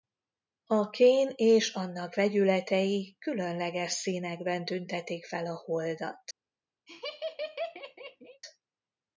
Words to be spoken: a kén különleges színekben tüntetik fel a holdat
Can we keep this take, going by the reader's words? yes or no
no